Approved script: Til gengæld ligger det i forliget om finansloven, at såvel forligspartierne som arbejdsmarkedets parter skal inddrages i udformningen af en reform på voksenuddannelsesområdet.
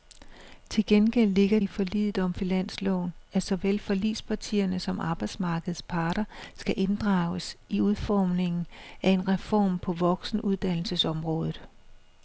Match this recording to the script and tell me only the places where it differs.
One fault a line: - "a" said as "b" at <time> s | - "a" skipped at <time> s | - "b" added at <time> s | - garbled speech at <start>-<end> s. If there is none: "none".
- "det" skipped at 1.6 s